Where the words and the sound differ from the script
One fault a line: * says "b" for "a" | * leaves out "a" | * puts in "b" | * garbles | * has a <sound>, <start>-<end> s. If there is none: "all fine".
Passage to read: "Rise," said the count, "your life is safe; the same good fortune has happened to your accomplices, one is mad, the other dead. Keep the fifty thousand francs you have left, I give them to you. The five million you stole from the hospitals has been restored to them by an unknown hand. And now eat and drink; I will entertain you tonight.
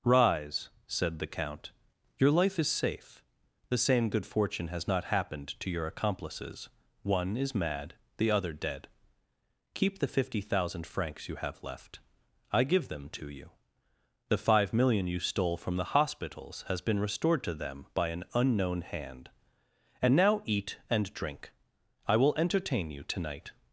* puts in "not"